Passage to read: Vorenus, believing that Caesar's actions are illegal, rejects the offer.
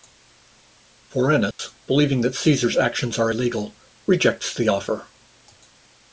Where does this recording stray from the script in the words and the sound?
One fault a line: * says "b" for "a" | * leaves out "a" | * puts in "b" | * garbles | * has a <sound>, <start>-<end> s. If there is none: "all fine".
* has a dropout, 1.5-1.6 s